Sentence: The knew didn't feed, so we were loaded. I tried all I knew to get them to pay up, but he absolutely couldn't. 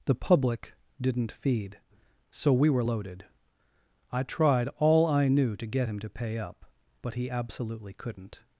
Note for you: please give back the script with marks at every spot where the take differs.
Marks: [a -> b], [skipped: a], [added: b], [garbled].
The [knew -> public] didn't feed, so we were loaded. I tried all I knew to get [them -> him] to pay up, but he absolutely couldn't.